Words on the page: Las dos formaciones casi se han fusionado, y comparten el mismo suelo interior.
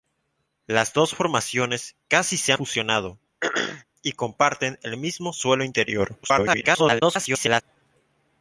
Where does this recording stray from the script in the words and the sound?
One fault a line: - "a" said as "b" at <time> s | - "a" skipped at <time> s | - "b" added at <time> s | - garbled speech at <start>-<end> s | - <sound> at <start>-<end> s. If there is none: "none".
- "han" skipped at 2.5 s
- throat clearing at 3.4-3.8 s
- garbled speech at 6.2-7.6 s